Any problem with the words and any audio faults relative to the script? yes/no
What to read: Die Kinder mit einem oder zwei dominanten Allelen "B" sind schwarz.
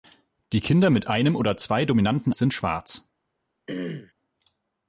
yes